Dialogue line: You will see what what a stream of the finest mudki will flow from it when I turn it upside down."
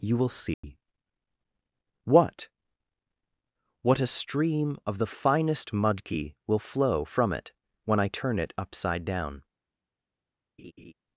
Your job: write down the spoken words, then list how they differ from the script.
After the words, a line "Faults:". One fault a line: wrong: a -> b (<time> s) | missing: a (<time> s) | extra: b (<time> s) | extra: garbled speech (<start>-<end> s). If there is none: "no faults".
You will see what what a stream of the finest mudki will flow from it when I turn it upside down."
Faults:
no faults